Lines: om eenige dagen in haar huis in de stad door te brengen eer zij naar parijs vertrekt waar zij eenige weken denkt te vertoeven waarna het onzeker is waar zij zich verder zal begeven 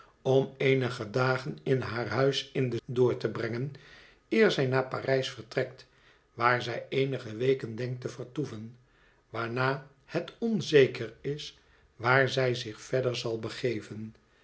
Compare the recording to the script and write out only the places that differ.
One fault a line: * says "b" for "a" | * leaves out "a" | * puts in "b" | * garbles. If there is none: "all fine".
* leaves out "stad"